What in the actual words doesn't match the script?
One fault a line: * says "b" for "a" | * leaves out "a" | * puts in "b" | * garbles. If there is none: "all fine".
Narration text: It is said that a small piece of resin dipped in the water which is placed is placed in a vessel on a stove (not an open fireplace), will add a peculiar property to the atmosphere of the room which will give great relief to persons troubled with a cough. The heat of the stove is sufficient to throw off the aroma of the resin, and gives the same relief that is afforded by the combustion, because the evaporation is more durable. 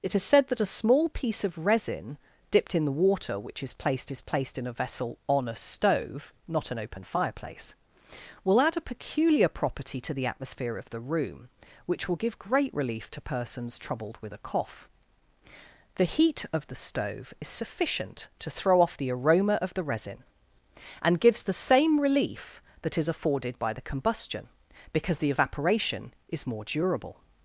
all fine